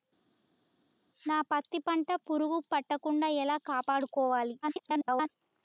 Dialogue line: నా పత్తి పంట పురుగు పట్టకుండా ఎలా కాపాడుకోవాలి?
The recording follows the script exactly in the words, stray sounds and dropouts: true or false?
false